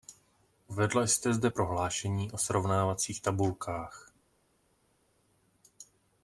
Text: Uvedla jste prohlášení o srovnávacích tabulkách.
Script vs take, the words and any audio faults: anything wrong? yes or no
yes